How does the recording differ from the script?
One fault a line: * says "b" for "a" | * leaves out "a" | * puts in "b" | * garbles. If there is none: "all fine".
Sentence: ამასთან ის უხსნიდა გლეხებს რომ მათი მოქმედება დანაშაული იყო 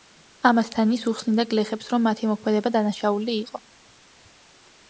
all fine